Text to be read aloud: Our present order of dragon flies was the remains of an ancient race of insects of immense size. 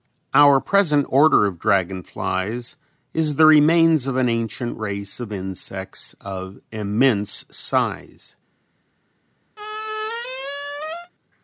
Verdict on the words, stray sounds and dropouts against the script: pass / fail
fail